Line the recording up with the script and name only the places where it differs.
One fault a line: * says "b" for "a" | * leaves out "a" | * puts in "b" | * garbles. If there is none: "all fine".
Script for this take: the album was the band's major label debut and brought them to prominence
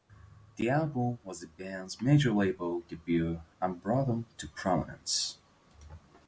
all fine